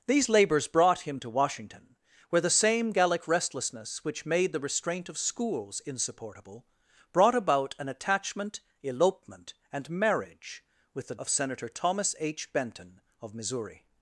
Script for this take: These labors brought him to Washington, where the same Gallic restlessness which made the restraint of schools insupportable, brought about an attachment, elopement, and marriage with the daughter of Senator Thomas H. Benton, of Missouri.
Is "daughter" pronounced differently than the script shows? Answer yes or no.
yes